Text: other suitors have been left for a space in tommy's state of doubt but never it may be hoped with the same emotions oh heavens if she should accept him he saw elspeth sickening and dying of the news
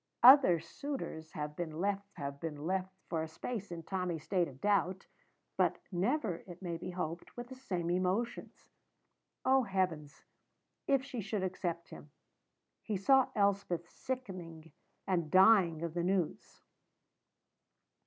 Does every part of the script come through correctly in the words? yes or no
no